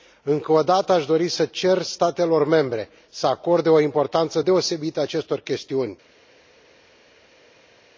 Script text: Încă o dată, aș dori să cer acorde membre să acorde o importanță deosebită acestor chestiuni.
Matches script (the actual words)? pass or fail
fail